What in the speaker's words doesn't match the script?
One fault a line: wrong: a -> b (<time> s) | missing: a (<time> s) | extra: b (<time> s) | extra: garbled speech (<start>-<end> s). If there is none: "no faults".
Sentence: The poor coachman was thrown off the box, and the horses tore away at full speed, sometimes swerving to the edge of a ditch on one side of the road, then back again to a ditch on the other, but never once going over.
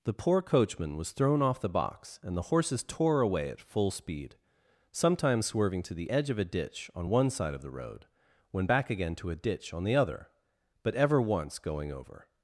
wrong: then -> when (8.5 s)
wrong: never -> ever (10.9 s)